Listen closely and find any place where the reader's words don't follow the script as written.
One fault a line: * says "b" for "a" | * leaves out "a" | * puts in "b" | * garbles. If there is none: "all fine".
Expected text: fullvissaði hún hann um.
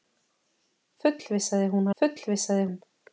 * says "fullvissaði" for "hann"